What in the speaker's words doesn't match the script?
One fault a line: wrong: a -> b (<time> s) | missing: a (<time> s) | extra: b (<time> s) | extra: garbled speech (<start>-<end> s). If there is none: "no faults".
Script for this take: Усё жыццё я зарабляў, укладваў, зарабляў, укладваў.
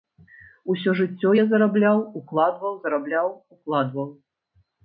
no faults